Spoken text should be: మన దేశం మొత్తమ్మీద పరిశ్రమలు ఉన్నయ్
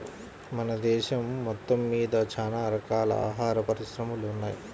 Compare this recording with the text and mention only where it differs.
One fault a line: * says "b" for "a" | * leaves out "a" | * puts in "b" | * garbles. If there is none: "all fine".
* puts in "చానా రకాల ఆహార"